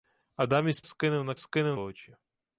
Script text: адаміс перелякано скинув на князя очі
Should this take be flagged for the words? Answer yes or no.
yes